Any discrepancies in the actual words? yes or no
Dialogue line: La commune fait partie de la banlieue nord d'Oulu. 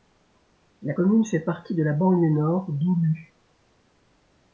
no